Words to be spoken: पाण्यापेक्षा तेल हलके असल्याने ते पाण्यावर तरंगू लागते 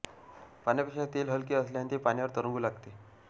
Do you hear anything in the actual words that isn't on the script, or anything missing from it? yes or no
no